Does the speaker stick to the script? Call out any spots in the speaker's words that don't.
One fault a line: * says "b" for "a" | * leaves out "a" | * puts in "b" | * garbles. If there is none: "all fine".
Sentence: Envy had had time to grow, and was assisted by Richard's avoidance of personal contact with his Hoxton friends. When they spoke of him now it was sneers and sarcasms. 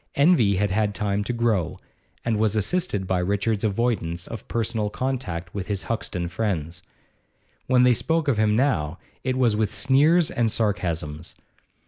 * puts in "with"